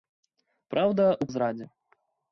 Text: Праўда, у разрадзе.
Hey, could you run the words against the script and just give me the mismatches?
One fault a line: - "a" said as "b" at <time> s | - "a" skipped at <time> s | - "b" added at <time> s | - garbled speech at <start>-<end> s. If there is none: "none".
none